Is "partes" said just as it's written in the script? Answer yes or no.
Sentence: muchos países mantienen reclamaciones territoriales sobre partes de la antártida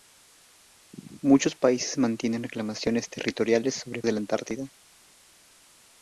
no